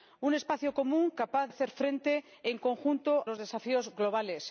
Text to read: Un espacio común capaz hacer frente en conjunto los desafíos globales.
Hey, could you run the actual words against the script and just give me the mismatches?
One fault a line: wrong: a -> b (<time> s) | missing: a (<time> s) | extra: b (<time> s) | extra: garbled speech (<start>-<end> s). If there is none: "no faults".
no faults